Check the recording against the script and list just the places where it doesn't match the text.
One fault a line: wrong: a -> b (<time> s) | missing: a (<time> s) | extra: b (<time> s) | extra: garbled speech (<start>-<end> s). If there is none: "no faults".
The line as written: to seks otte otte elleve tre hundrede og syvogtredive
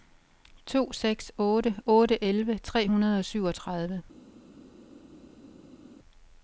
no faults